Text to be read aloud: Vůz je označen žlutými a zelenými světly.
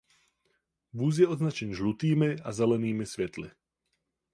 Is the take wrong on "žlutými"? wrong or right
right